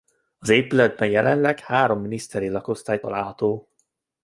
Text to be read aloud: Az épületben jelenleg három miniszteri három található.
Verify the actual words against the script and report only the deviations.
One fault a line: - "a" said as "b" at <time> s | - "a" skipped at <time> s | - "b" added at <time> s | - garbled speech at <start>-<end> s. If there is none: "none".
- "három" said as "lakosztály" at 2.5 s